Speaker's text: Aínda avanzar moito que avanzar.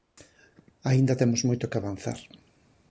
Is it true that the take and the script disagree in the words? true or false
true